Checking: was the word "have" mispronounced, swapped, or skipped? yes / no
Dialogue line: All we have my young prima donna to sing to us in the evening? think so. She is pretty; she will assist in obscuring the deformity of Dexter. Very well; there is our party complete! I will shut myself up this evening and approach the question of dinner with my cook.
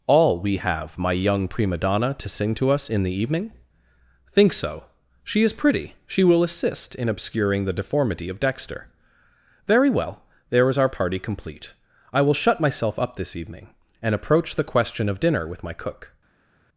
no